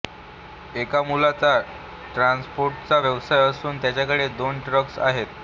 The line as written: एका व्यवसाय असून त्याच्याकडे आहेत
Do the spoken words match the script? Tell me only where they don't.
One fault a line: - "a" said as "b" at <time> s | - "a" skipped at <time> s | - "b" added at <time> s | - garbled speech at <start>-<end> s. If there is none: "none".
- "मुलाचा ट्रान्सपोर्टचा" added at 1.0 s
- "दोन ट्रक्स" added at 4.3 s